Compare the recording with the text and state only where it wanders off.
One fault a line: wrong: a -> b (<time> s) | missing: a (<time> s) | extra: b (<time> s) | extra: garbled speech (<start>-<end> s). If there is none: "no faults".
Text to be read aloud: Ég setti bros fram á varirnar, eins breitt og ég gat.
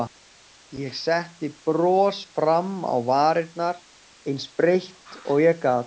no faults